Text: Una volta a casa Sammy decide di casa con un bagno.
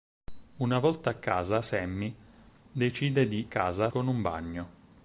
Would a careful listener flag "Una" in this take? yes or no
no